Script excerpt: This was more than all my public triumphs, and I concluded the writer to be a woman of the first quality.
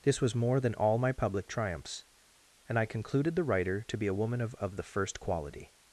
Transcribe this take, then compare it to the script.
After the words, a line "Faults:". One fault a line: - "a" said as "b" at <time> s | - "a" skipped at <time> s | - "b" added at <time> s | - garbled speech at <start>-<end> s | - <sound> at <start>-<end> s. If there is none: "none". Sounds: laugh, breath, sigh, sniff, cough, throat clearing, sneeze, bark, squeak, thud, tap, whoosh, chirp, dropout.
This was more than all my public triumphs, and I concluded the writer to be a woman of of the first quality.
Faults:
- "of" added at 4.5 s